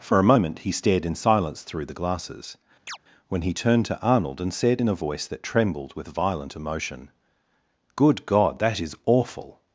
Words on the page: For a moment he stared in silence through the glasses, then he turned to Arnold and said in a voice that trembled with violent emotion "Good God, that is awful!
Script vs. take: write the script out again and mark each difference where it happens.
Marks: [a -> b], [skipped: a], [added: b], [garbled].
For a moment he stared in silence through the glasses, [then -> when] he turned to Arnold and said in a voice that trembled with violent emotion "Good God, that is awful!